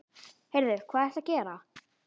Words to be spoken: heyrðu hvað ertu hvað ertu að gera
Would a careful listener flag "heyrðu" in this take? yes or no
no